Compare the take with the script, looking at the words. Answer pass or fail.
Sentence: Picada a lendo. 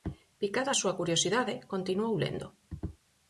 fail